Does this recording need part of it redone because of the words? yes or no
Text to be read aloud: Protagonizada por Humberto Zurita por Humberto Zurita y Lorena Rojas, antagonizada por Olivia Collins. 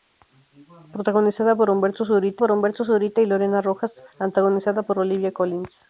no